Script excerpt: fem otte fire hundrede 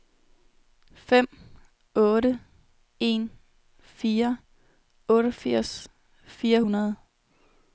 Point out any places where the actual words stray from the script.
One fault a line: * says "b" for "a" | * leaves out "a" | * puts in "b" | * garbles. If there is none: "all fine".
* puts in "en fire otteogfirs"